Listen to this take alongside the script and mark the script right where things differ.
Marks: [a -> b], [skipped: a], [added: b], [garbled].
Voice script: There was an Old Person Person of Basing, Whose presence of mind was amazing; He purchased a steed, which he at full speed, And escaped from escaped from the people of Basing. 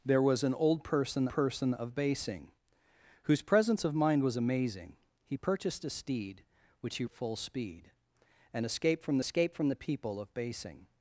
There was an Old Person Person of Basing, Whose presence of mind was amazing; He purchased a steed, which he at full speed, And escaped from escaped from the people of Basing.